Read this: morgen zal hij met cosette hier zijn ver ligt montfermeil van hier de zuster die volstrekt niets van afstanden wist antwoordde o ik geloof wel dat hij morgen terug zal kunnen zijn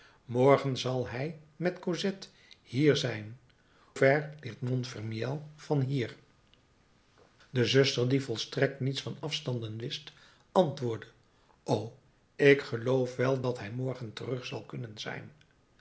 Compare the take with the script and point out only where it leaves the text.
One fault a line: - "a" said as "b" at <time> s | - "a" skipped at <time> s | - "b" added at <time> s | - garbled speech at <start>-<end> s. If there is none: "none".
none